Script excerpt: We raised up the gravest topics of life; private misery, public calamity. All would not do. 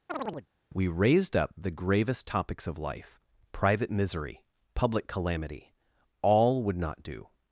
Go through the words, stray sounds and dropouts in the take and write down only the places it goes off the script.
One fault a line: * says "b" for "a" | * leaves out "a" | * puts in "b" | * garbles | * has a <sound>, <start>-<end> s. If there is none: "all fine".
* has a chirp, 0.1-0.5 s